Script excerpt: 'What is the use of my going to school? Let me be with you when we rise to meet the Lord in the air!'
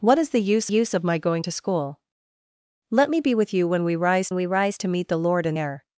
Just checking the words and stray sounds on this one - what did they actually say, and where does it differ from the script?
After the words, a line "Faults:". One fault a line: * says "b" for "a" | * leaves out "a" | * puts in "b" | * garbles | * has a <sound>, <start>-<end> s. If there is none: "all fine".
'What is the use use of my going to school? Let me be with you when we rise we rise to meet the Lord in air!'
Faults:
* puts in "use"
* puts in "we rise"
* leaves out "the"